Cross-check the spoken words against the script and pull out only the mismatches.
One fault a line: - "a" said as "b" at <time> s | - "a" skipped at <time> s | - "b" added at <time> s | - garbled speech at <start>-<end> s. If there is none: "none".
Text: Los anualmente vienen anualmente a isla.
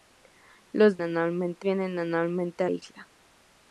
none